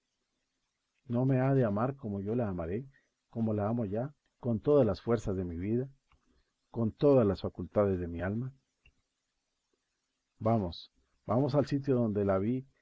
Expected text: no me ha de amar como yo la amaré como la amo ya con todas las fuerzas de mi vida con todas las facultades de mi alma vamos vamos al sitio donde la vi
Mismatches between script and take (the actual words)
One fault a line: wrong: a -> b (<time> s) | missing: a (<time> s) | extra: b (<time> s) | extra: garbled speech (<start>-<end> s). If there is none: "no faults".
no faults